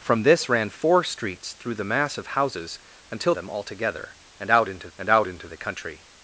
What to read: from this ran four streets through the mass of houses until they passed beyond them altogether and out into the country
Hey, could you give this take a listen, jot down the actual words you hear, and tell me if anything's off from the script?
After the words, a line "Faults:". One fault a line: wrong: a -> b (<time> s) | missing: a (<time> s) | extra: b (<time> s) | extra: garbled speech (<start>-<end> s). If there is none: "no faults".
from this ran four streets through the mass of houses until them altogether and out into and out into the country
Faults:
wrong: they passed beyond them altogether -> them altogether and out into (3.3 s)